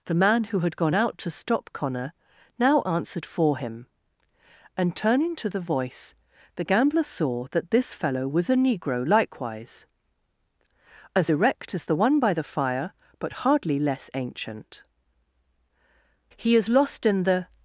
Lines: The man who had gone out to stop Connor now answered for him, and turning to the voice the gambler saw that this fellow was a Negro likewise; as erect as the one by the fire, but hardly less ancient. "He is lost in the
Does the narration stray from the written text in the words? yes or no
no